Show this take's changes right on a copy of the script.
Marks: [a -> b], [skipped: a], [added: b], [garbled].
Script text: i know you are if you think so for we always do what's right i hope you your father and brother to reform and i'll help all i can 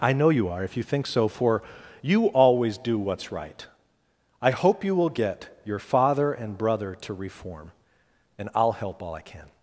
i know you are if you think so for [we -> you] always do what's right i hope you [added: will get] your father and brother to reform and i'll help all i can